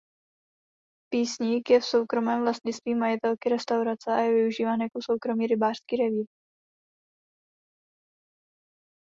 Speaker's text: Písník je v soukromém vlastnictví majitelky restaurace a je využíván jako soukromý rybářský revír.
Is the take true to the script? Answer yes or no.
yes